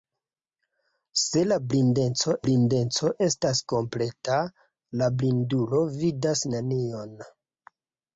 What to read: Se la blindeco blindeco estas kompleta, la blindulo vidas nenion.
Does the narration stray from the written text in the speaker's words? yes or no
no